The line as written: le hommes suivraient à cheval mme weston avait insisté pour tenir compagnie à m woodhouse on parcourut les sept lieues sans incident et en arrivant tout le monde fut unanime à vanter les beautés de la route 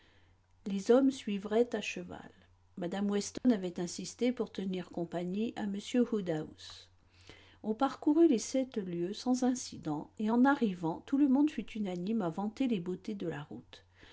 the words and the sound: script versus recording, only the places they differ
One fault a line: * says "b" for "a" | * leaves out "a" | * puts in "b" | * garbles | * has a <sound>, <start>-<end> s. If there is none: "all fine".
* says "les" for "le"
* has a dropout, 3.4-3.4 s